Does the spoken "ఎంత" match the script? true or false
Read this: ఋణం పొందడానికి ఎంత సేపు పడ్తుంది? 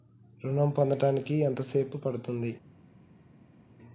true